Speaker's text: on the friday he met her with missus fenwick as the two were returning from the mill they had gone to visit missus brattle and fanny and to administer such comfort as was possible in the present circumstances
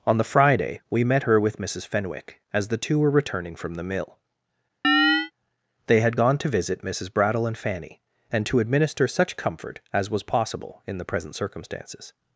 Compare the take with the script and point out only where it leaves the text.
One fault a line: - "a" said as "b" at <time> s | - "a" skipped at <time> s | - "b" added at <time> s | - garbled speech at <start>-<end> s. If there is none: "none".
- "he" said as "we" at 0.9 s